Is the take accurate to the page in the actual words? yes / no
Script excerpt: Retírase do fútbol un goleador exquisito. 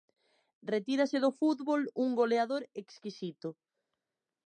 yes